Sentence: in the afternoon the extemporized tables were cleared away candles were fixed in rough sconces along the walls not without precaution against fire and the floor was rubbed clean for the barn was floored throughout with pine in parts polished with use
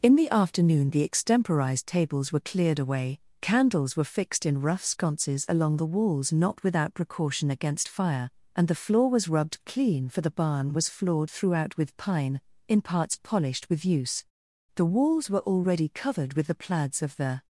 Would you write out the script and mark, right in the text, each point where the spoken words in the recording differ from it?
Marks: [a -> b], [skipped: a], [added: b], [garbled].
in the afternoon the extemporized tables were cleared away candles were fixed in rough sconces along the walls not without precaution against fire and the floor was rubbed clean for the barn was floored throughout with pine in parts polished with use [added: the walls were already covered with the plaids of the]